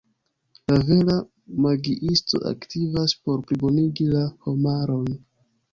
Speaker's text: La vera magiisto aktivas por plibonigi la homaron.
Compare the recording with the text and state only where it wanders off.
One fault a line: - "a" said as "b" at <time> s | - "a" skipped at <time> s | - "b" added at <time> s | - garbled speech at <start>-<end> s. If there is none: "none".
none